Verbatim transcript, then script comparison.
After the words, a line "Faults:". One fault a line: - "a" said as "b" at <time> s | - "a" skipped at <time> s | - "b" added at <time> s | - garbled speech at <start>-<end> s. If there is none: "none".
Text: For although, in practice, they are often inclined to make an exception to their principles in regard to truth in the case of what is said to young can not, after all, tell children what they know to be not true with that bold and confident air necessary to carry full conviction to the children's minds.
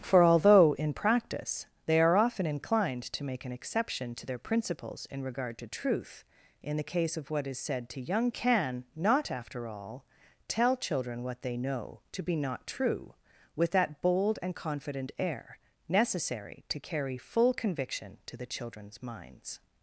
For although, in practice, they are often inclined to make an exception to their principles in regard to truth in the case of what is said to young can not, after all, tell children what they know to be not true with that bold and confident air necessary to carry full conviction to the children's minds.
Faults:
none